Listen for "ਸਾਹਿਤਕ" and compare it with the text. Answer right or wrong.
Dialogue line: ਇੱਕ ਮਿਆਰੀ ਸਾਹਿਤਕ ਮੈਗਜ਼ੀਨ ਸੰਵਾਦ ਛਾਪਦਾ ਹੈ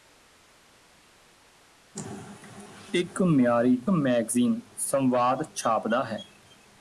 wrong